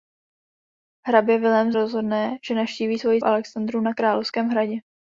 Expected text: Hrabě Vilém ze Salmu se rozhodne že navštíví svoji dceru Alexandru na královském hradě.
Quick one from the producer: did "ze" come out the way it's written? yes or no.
no